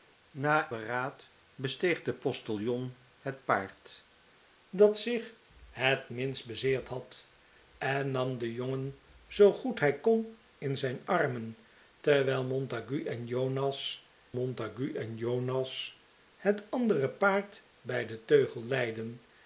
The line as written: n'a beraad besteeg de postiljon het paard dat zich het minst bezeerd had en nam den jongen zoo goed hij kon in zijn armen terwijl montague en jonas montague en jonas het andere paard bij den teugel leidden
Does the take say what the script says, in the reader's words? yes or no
yes